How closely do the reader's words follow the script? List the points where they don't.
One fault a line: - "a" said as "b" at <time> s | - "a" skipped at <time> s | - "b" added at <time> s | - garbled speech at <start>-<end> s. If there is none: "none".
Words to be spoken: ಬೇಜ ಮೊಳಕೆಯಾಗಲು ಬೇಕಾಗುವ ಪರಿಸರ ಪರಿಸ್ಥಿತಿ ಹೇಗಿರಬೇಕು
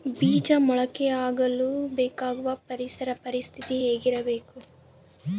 none